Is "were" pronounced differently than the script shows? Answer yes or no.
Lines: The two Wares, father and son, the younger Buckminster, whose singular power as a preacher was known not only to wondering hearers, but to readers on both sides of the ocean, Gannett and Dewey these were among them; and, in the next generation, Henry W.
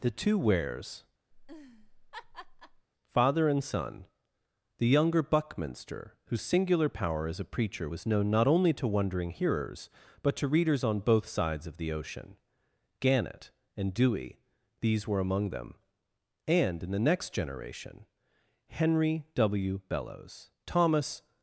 no